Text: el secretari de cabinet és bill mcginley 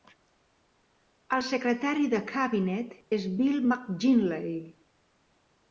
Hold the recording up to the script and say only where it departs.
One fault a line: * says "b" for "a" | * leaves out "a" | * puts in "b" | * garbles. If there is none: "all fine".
all fine